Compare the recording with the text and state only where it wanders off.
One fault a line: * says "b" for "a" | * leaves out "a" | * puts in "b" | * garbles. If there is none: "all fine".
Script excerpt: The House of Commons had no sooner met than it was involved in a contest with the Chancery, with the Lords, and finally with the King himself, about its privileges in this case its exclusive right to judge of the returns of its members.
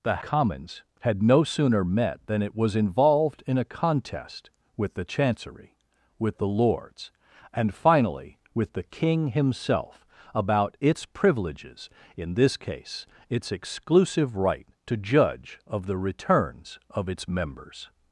* leaves out "House of"